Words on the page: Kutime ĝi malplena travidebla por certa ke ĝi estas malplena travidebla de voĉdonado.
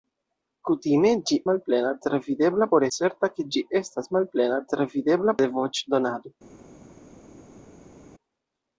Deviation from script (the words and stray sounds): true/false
false